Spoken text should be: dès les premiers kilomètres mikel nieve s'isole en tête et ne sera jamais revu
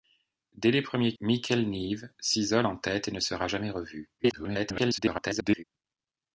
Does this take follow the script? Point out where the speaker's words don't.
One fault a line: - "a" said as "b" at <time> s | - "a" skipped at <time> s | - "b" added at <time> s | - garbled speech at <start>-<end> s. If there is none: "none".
- "kilomètres" skipped at 1.1 s
- garbled speech at 4.2-5.6 s